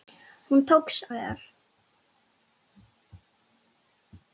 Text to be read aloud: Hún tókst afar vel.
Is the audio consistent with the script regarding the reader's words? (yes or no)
no